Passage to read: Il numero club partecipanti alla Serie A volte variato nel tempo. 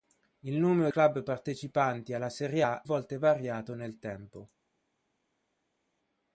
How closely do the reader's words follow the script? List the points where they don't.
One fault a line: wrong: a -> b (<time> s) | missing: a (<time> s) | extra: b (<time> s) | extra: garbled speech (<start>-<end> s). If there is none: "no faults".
no faults